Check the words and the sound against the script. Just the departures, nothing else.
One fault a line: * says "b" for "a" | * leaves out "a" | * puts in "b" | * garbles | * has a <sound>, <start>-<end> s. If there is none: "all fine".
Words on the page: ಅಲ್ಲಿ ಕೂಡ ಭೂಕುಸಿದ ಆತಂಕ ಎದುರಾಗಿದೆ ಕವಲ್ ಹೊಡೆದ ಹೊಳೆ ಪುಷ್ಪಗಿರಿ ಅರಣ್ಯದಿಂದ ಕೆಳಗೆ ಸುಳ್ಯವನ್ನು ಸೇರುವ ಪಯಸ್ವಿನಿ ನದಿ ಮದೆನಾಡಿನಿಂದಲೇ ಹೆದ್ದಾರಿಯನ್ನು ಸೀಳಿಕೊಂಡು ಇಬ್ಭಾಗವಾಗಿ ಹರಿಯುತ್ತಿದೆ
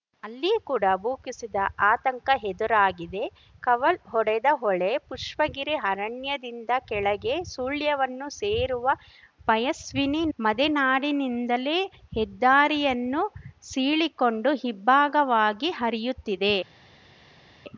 * leaves out "ನದಿ"